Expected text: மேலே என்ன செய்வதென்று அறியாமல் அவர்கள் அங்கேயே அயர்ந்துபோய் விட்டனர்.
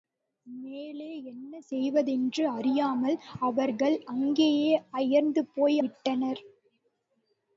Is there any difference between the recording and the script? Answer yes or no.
no